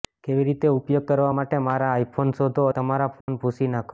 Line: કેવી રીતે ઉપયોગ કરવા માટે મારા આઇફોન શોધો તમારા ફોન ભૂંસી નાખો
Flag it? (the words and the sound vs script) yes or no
yes